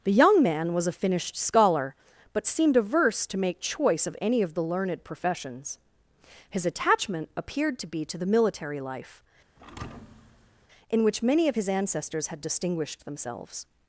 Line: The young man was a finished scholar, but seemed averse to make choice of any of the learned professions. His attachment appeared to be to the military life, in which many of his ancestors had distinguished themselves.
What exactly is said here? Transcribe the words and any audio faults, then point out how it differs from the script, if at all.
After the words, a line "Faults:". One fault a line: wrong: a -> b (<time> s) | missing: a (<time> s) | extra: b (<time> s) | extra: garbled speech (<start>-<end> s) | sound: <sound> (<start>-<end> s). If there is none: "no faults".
The young man was a finished scholar, but seemed averse to make choice of any of the learned professions. His attachment appeared to be to the military life, in which many of his ancestors had distinguished themselves.
Faults:
sound: thud (9.6-10.7 s)